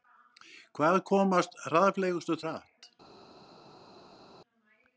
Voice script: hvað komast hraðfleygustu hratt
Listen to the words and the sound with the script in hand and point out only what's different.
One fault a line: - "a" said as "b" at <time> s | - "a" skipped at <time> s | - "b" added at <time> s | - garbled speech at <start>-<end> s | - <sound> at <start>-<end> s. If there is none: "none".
none